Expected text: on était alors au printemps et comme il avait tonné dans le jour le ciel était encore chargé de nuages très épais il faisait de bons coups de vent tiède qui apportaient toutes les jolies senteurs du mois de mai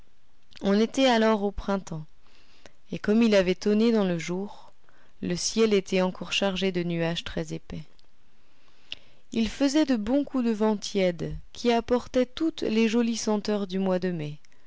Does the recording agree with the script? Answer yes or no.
yes